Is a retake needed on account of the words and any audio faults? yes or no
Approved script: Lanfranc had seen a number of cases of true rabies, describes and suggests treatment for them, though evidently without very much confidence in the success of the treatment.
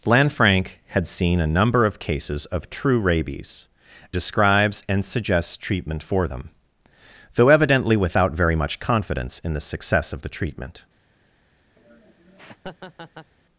yes